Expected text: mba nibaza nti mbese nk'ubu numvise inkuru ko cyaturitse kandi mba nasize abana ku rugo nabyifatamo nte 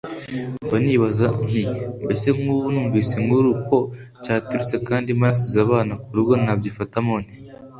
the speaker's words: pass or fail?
pass